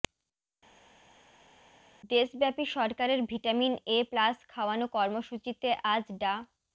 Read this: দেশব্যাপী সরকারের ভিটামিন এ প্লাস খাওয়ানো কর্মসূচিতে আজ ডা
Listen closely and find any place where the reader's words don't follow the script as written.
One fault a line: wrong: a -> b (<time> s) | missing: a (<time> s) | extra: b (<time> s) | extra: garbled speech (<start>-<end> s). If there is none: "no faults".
no faults